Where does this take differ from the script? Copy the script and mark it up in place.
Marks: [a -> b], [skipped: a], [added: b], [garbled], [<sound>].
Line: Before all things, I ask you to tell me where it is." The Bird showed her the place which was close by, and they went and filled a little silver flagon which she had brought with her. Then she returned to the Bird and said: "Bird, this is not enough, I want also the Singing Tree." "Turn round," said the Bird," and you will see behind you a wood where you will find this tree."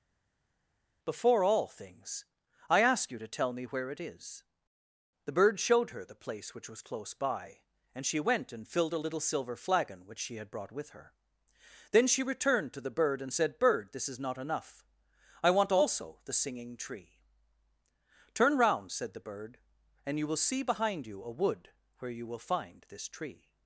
Before all things, I ask you to tell me where it is." The Bird showed her the place which was close by, and [they -> she] went and filled a little silver flagon which she had brought with her. Then she returned to the Bird and said: "Bird, this is not enough, I want also the Singing Tree." "Turn round," said the Bird," and you will see behind you a wood where you will find this tree."